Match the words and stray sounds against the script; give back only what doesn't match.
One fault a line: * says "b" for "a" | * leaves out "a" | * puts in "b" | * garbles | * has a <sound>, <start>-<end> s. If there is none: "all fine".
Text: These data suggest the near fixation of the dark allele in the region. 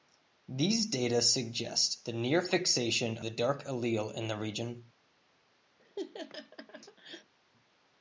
* leaves out "of"
* has a laugh, 5.8-7.3 s